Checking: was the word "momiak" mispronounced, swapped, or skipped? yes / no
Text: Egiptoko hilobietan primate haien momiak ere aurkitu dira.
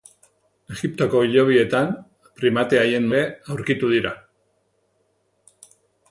yes